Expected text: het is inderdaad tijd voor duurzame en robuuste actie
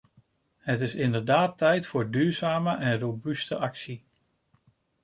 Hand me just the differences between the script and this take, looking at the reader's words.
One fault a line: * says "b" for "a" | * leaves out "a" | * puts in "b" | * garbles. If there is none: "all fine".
all fine